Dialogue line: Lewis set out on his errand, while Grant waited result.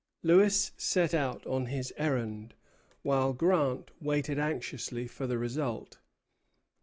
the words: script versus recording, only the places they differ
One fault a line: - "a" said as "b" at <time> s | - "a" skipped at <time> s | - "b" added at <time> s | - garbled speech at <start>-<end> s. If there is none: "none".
- "anxiously for the" added at 4.4 s